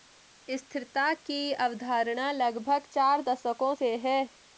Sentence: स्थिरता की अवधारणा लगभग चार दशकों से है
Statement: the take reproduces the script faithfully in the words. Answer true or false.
true